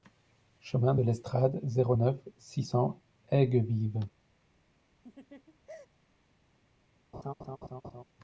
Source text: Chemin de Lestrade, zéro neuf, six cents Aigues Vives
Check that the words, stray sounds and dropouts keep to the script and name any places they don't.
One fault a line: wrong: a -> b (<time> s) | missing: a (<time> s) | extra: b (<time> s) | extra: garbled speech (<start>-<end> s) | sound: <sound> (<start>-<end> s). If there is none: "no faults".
sound: laugh (5.0-5.9 s)
sound: laugh (7.1-8.0 s)